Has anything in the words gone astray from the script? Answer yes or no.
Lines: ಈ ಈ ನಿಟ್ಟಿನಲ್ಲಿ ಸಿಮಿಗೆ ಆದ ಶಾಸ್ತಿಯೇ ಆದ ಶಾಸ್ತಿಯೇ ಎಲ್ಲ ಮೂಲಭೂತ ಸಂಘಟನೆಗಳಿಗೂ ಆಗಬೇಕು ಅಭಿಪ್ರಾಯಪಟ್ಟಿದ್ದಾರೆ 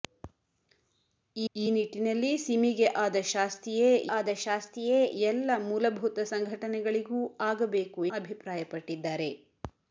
no